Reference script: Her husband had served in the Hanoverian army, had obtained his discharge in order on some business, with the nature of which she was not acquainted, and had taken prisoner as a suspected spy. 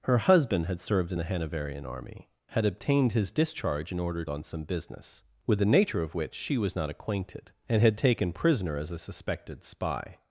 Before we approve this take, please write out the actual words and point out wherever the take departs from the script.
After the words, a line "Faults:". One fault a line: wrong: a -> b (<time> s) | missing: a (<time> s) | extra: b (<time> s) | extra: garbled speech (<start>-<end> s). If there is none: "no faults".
Her husband had served in the Hanoverian army, had obtained his discharge in order on some business, with the nature of which she was not acquainted, and had taken prisoner as a suspected spy.
Faults:
no faults